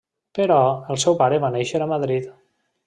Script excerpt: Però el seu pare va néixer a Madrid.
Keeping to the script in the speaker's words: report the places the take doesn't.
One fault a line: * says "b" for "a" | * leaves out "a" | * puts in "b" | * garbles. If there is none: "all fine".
all fine